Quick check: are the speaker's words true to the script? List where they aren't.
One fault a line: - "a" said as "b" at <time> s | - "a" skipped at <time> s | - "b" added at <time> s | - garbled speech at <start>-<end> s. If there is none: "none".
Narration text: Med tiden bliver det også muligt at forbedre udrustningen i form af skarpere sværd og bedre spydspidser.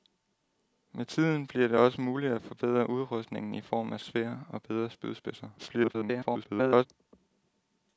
- "skarpere" skipped at 4.0 s
- garbled speech at 5.6-6.9 s